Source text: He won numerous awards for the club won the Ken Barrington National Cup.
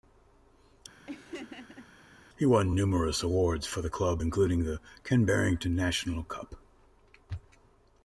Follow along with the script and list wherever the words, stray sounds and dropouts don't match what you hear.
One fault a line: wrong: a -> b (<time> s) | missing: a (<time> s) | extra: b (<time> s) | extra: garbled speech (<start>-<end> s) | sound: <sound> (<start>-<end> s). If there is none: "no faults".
sound: laugh (1.1-1.9 s)
wrong: won -> including (4.2 s)